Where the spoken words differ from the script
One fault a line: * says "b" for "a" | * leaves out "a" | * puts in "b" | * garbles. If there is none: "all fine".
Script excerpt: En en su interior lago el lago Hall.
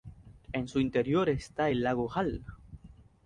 * leaves out "en"
* says "está" for "lago"